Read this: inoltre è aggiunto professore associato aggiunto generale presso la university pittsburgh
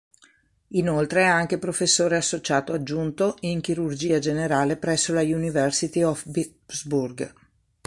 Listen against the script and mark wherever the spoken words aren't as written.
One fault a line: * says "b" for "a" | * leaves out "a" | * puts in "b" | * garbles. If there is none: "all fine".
* says "anche" for "aggiunto"
* puts in "in chirurgia"
* puts in "of"